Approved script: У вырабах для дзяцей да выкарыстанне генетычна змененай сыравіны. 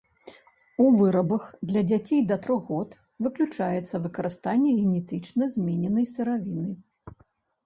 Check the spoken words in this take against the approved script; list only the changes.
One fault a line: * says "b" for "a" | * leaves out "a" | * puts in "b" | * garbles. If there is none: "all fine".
* puts in "трох год выключаецца"